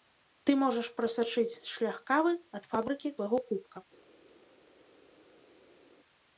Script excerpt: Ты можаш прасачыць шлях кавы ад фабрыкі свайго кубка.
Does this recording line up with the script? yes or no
yes